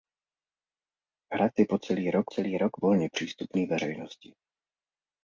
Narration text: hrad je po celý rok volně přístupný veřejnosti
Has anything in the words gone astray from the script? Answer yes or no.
yes